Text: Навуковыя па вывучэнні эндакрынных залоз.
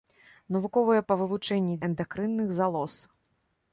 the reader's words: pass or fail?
pass